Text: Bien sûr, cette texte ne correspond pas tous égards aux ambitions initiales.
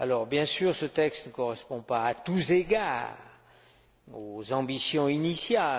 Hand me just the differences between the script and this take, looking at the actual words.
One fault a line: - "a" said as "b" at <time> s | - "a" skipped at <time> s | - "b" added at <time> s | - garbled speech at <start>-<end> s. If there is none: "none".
- "cette" said as "ce" at 0.8 s
- "à" added at 2.0 s